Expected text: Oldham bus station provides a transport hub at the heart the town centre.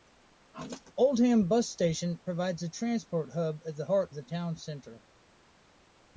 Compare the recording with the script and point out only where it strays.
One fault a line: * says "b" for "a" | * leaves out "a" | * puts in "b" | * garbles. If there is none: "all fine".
all fine